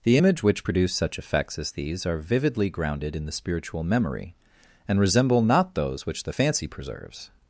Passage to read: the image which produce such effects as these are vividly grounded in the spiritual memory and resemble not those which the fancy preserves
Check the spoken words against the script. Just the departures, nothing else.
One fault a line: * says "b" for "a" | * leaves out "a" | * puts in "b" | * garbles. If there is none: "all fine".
all fine